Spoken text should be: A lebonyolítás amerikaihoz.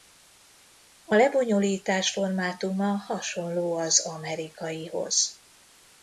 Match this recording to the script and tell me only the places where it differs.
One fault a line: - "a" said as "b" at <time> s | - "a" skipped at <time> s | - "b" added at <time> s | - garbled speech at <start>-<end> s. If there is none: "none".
- "formátuma hasonló az" added at 2.1 s